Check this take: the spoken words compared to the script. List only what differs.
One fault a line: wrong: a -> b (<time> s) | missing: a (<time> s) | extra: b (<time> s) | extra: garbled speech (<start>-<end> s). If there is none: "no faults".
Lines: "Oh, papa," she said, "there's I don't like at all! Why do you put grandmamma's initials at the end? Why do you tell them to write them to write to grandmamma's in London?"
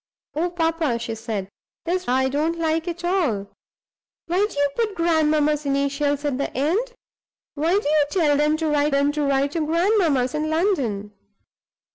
no faults